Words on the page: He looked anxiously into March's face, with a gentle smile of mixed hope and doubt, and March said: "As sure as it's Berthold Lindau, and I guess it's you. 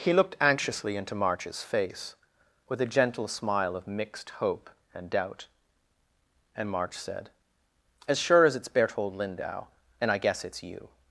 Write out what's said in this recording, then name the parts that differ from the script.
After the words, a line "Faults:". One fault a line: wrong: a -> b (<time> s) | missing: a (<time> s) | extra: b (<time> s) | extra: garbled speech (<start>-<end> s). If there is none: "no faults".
He looked anxiously into March's face, with a gentle smile of mixed hope and doubt, and March said: "As sure as it's Berthold Lindau, and I guess it's you.
Faults:
no faults